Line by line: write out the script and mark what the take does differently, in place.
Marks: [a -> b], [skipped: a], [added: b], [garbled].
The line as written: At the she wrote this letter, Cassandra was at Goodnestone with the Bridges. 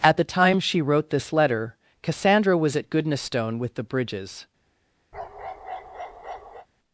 At the [added: time] she wrote this letter, Cassandra was at Goodnestone with the Bridges.